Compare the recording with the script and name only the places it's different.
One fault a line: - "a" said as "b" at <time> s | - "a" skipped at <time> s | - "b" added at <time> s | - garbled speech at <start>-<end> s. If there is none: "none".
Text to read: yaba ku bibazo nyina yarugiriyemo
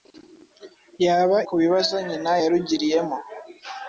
none